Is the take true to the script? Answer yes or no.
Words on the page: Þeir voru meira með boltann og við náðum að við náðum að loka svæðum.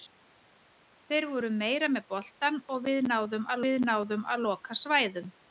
yes